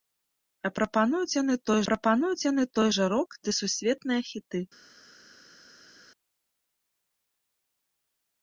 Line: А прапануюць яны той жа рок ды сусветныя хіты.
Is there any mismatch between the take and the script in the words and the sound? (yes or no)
yes